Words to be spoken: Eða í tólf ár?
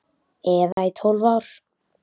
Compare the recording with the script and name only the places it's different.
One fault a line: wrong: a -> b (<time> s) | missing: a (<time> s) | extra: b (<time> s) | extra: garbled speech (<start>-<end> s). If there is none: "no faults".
no faults